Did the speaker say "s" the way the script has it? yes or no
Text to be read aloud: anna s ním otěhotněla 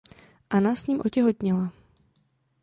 yes